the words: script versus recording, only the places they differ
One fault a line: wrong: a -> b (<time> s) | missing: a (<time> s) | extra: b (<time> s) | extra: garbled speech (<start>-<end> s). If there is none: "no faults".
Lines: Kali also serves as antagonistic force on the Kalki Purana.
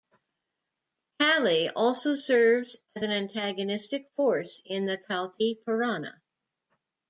extra: an (3.0 s)
wrong: on -> in (4.6 s)